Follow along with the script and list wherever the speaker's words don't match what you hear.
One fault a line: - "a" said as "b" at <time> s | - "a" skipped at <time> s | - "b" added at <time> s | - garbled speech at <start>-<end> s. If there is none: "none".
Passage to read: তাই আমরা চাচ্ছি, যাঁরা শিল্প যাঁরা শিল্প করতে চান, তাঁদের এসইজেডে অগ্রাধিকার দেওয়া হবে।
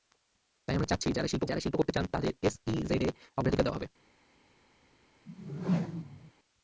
none